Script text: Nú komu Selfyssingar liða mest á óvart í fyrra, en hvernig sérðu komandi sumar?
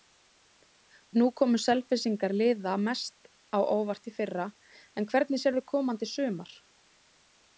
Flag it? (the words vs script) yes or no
no